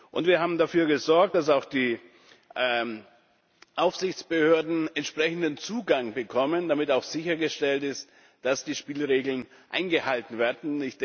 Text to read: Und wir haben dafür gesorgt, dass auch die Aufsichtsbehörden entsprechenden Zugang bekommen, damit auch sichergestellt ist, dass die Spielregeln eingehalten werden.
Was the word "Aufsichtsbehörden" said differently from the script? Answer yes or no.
no